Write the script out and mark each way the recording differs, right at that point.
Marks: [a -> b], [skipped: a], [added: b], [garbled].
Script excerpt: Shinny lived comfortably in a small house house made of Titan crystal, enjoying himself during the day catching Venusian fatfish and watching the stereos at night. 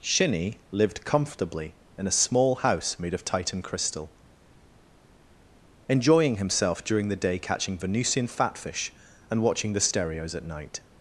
Shinny lived comfortably in a small house [skipped: house] made of Titan crystal, enjoying himself during the day catching Venusian fatfish and watching the stereos at night.